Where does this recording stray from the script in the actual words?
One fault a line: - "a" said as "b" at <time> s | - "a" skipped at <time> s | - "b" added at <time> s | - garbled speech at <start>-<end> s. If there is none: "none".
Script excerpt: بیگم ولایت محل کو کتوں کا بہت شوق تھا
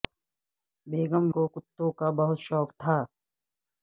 - "ولایت محل" skipped at 1.2 s